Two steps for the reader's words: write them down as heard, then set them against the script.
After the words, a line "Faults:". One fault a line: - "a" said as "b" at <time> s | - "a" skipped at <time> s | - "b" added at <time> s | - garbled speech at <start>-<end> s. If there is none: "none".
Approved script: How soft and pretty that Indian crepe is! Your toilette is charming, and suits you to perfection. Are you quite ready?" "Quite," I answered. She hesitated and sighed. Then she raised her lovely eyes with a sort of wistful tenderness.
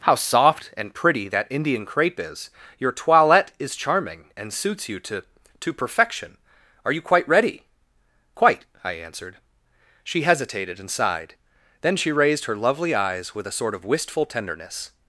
How soft and pretty that Indian crepe is! Your toilette is charming, and suits you to to perfection. Are you quite ready?" "Quite," I answered. She hesitated and sighed. Then she raised her lovely eyes with a sort of wistful tenderness.
Faults:
- "to" added at 5.6 s